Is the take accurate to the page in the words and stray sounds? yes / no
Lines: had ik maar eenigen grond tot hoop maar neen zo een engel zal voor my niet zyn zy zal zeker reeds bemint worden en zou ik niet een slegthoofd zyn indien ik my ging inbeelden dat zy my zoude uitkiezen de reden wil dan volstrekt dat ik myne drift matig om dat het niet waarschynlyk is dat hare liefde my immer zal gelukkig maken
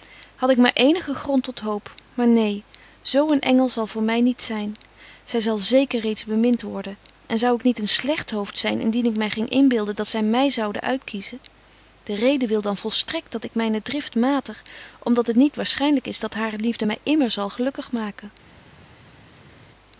yes